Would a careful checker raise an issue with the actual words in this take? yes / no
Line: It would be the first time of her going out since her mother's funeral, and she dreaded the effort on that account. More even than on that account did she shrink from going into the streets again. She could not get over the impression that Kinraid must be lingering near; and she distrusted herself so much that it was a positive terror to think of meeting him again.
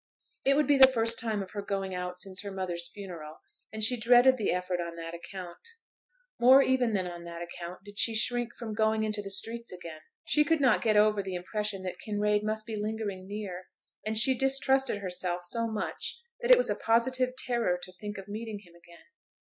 no